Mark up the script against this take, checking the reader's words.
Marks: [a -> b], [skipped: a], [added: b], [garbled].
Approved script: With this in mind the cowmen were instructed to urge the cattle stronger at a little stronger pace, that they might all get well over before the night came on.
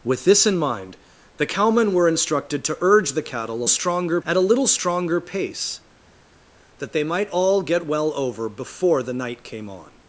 With this in mind the cowmen were instructed to urge the cattle stronger at a little stronger pace, that they might all get well over before the night came on.